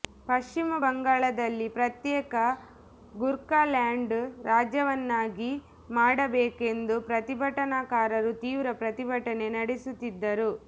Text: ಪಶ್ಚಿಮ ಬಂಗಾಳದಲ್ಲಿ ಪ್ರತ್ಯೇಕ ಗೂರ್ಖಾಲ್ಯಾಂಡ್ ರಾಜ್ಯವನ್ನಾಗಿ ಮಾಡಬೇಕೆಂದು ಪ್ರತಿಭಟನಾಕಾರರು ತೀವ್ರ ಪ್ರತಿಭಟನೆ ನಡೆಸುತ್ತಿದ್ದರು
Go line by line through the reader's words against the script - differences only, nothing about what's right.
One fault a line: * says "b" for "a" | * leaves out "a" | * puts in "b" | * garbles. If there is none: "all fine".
all fine